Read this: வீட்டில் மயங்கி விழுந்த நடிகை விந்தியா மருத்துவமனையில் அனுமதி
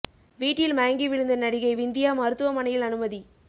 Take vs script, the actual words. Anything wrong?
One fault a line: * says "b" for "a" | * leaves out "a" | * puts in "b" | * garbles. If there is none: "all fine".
all fine